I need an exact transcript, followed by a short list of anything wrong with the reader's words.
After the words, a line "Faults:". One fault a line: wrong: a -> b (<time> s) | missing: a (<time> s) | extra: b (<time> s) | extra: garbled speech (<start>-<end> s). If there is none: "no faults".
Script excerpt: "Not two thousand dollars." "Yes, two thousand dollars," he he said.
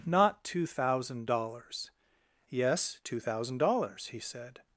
"Not two thousand dollars." "Yes, two thousand dollars," he said.
Faults:
missing: he (4.2 s)